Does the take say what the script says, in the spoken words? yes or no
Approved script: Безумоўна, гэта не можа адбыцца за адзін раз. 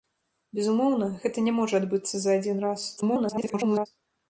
no